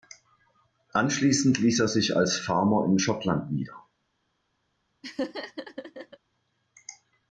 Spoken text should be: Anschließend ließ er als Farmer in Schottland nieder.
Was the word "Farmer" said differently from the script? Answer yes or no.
no